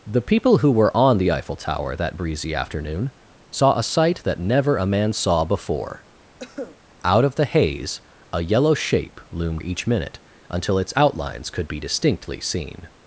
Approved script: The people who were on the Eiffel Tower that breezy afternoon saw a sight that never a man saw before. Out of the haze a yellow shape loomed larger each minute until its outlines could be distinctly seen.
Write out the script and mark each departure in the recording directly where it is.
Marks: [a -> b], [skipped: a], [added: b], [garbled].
The people who were on the Eiffel Tower that breezy afternoon saw a sight that never a man saw before. Out of the haze a yellow shape loomed [skipped: larger] each minute until its outlines could be distinctly seen.